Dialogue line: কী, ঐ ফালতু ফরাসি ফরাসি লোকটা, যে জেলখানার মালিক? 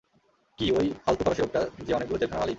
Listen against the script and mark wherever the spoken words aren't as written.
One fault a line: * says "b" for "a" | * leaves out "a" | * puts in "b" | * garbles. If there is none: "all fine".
* leaves out "ফরাসি"
* puts in "অনেকগুলো"